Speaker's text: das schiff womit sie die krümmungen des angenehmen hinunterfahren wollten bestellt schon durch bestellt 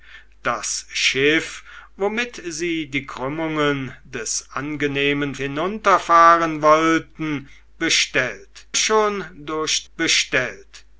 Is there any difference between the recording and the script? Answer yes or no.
no